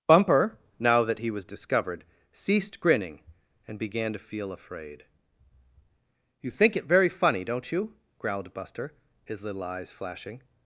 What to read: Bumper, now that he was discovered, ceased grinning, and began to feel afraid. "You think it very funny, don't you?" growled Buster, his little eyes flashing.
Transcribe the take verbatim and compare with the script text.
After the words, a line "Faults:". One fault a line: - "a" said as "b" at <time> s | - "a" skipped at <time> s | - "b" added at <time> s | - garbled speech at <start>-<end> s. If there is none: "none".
Bumper, now that he was discovered, ceased grinning, and began to feel afraid. "You think it very funny, don't you?" growled Buster, his little eyes flashing.
Faults:
none